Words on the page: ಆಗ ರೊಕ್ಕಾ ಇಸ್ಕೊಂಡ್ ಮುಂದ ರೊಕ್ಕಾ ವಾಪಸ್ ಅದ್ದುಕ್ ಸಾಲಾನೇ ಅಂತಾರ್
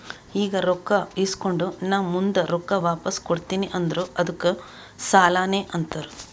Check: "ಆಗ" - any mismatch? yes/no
yes